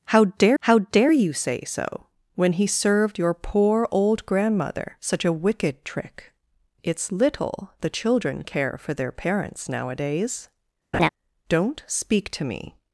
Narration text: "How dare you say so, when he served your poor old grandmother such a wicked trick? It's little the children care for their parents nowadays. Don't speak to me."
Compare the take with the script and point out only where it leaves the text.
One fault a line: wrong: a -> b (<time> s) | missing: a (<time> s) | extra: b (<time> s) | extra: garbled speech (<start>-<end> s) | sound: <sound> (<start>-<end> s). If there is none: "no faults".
extra: how dare (0.6 s)
sound: laugh (10.9-11.1 s)